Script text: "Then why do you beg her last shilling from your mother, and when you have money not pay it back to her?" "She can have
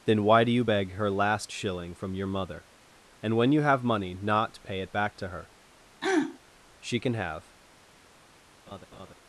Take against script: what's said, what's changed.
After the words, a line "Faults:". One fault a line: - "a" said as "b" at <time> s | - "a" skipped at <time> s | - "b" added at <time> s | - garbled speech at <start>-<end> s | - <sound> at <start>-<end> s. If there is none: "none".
"Then why do you beg her last shilling from your mother, and when you have money not pay it back to her?" "She can have
Faults:
- throat clearing at 6.0-6.4 s
- laugh at 8.7-9.1 s